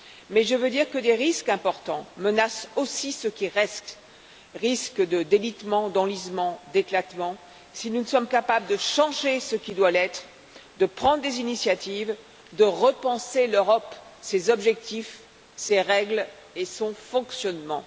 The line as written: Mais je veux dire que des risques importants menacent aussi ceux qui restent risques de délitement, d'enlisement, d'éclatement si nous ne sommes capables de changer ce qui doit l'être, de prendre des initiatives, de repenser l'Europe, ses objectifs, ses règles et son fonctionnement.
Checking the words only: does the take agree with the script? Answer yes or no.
yes